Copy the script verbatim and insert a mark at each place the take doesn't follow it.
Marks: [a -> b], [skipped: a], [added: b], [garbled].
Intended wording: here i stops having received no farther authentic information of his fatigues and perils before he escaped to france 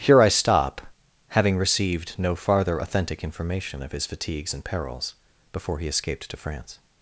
here i [stops -> stop] having received no farther authentic information of his fatigues and perils before he escaped to france